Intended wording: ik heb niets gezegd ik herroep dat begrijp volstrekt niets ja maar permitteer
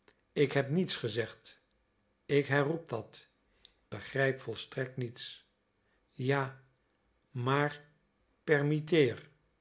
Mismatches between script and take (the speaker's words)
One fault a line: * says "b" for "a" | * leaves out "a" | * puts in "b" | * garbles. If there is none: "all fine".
all fine